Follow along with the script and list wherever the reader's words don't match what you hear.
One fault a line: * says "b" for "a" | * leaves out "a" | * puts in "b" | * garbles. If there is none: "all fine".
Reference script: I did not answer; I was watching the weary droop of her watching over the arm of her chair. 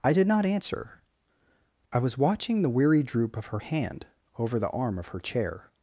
* says "hand" for "watching"